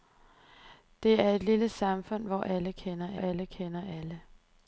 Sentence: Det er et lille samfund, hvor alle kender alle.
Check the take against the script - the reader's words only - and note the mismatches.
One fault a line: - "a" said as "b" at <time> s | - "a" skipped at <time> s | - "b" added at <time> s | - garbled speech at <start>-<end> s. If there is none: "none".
- "kender alle" added at 3.5 s